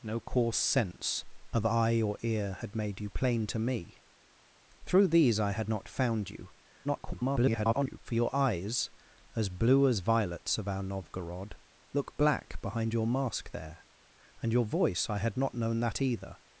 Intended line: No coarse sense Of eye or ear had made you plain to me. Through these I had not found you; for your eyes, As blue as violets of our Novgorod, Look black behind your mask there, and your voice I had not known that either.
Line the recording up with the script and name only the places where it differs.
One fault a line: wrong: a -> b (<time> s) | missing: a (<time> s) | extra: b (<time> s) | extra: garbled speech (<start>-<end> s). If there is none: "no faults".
extra: garbled speech (6.8-8.0 s)